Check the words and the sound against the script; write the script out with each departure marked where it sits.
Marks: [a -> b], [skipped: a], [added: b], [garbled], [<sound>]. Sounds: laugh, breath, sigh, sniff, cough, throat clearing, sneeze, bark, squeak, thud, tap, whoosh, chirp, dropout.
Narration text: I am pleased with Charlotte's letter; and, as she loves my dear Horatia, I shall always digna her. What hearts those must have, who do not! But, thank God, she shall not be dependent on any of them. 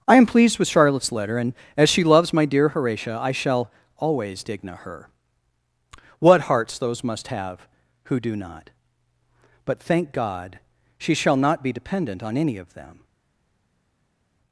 I am pleased with Charlotte's letter; and, as she loves my dear Horatia, I shall always digna her. What hearts those must have, who do not! But, thank God, she shall not be dependent on any of them.